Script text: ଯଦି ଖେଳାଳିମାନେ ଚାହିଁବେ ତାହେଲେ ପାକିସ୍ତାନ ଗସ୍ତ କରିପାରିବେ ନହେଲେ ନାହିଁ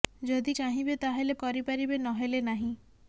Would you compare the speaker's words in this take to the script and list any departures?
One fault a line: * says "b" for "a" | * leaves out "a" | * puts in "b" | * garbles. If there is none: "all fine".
* leaves out "ଖେଳାଳିମାନେ"
* leaves out "ପାକିସ୍ତାନ ଗସ୍ତ"